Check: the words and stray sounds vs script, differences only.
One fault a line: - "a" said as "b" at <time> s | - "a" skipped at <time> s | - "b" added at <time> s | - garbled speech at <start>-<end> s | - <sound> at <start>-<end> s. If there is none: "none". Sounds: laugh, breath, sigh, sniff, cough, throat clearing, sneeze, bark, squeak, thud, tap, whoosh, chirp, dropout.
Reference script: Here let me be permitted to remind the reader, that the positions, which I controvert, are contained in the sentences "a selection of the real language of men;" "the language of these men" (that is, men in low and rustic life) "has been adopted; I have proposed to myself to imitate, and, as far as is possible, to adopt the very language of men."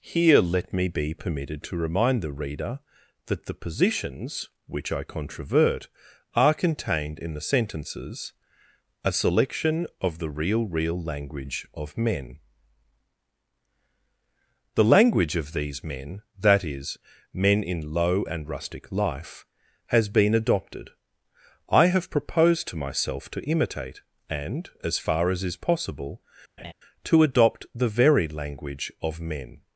- "real" added at 10.7 s
- laugh at 26.6-26.7 s